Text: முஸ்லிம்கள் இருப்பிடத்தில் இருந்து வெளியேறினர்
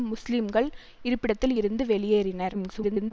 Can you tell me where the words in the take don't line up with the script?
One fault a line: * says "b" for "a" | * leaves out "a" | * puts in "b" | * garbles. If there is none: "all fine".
* garbles